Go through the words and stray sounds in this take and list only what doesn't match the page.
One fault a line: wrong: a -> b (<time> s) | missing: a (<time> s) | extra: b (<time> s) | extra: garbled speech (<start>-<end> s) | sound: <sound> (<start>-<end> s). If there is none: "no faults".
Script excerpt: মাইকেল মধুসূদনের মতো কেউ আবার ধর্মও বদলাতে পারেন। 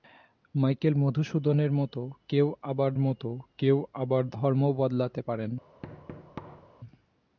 extra: মতো কেউ আবার (3.0 s)
sound: thud (5.8-6.7 s)